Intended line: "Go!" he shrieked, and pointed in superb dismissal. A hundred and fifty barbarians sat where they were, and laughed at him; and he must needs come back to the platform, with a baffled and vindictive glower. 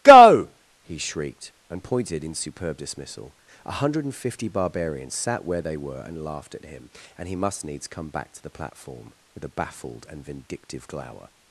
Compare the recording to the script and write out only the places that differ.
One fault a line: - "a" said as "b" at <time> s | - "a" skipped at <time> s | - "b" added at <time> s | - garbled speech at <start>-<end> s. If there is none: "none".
none